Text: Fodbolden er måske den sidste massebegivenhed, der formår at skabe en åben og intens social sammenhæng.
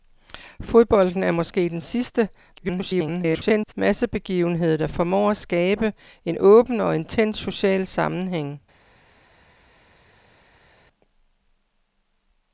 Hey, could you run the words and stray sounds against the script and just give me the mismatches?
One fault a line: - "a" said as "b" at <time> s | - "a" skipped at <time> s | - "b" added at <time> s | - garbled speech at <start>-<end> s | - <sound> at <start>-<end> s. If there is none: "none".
- garbled speech at 2.6-3.7 s